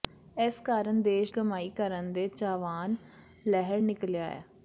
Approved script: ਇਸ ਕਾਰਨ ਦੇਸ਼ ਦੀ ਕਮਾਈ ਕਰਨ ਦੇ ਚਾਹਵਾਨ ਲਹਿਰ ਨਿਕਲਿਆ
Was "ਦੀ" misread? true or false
true